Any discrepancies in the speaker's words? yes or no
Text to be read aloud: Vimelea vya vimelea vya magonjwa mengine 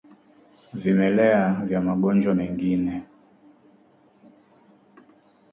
yes